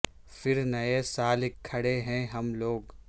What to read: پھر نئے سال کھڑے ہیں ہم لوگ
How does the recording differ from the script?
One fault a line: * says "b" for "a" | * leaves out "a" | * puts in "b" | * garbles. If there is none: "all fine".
all fine